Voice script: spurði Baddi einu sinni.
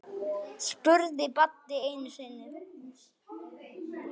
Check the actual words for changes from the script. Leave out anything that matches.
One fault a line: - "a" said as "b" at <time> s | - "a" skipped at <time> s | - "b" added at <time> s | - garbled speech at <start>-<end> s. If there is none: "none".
none